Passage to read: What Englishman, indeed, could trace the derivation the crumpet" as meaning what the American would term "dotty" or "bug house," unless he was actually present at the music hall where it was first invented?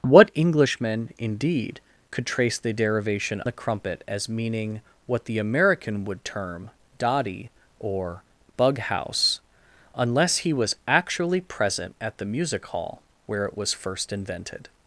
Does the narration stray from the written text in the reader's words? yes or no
no